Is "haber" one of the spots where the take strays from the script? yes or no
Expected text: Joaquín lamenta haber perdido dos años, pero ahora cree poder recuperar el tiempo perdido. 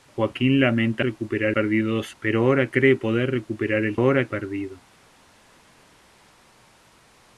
yes